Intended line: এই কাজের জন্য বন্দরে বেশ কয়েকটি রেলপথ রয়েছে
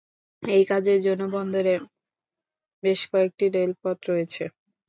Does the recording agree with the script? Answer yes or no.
yes